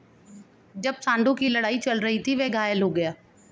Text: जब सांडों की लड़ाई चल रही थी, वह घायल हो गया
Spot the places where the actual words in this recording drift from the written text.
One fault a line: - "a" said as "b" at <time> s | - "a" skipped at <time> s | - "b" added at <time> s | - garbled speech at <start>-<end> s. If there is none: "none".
none